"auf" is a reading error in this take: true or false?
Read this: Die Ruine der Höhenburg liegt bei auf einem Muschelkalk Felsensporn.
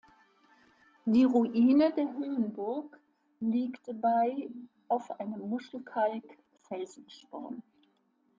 false